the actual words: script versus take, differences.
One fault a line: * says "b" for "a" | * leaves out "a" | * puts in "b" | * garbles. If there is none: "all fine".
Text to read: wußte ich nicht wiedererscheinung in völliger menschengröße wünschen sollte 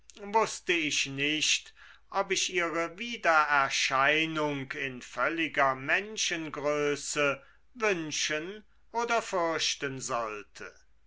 * puts in "ob ich ihre"
* puts in "oder fürchten"